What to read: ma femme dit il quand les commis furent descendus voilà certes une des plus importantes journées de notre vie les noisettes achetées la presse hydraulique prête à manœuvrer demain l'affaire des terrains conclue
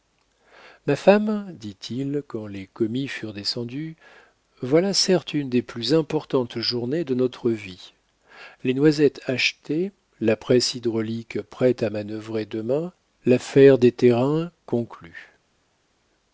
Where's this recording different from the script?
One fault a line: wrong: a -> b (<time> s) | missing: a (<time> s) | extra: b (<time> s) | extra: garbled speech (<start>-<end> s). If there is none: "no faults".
no faults